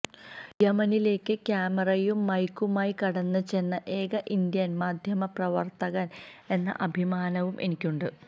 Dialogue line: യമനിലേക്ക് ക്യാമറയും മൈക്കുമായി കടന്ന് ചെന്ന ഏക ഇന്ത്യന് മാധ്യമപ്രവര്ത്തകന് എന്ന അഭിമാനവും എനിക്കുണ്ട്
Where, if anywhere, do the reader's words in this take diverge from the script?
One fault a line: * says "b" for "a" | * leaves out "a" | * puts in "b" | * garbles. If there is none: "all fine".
all fine